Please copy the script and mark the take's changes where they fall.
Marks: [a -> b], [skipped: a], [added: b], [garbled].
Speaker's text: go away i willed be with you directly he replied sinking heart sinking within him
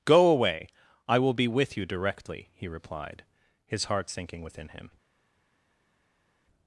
go away i [willed -> will] be with you directly he replied [sinking -> his] heart sinking within him